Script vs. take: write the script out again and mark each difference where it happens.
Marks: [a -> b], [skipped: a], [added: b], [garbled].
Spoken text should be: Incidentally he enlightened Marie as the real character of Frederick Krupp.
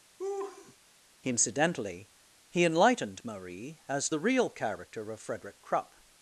Incidentally he enlightened Marie as the real character of Frederick Krupp.